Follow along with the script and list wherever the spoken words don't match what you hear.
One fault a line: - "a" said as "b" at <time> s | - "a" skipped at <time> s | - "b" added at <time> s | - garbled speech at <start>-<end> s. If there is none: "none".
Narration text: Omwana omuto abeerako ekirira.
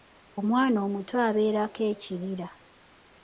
none